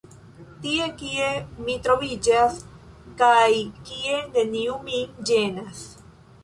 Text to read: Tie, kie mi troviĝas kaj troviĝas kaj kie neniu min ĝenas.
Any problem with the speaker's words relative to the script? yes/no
yes